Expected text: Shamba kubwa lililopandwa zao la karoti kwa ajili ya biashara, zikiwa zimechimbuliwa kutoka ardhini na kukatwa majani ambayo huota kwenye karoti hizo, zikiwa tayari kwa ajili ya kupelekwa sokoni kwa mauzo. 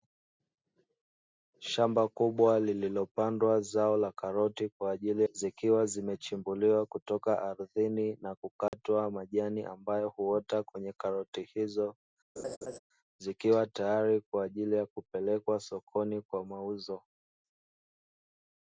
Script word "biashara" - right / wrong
wrong